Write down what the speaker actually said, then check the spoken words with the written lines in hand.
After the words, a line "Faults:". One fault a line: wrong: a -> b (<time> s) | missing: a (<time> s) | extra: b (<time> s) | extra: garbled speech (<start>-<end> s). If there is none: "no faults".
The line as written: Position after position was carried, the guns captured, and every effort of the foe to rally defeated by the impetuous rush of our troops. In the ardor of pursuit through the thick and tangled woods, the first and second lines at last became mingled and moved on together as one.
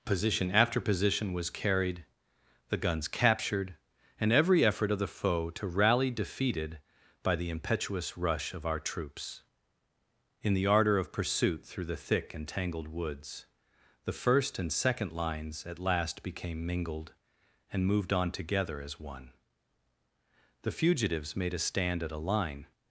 Position after position was carried, the guns captured, and every effort of the foe to rally defeated by the impetuous rush of our troops. In the ardor of pursuit through the thick and tangled woods, the first and second lines at last became mingled and moved on together as one. The fugitives made a stand at a line
Faults:
extra: The fugitives made a stand at a line (20.6 s)